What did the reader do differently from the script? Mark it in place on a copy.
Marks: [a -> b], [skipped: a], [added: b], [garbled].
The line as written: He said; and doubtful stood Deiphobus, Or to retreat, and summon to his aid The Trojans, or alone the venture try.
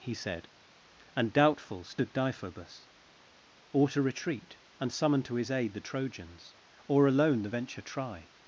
He said; and doubtful stood Deiphobus, Or to retreat, and summon to his aid The Trojans, or alone the venture try.